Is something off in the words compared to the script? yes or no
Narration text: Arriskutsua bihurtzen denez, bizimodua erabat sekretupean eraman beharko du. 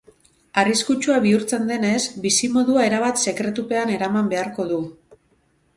no